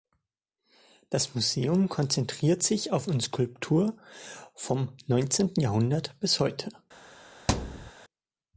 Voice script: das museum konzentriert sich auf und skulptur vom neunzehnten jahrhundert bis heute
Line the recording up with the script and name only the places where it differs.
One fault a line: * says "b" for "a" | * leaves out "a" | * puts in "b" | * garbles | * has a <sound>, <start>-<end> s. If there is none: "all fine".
* has a thud, 7.5-7.9 s